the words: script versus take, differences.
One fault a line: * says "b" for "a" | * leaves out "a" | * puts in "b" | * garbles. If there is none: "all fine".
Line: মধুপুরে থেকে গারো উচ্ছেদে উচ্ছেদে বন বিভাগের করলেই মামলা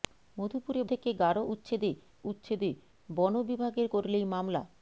all fine